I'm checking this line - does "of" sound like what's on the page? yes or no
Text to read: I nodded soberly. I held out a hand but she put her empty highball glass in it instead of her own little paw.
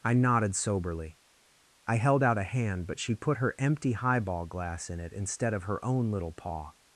yes